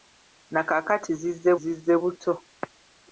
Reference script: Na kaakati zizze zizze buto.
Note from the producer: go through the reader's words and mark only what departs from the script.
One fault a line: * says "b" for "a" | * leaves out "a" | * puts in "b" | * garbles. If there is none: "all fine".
all fine